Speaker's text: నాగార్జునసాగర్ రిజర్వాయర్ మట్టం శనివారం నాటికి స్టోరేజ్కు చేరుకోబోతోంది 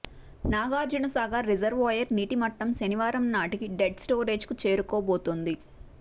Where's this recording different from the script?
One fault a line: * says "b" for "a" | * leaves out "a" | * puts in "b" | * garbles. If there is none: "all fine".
* puts in "నీటి"
* puts in "డెడ్"